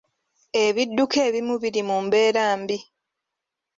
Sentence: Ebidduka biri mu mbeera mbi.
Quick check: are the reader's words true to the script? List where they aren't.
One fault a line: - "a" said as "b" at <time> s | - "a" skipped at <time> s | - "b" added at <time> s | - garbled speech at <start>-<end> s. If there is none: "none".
- "ebimu" added at 1.3 s